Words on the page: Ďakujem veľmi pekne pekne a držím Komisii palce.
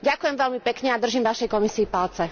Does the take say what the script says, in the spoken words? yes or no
no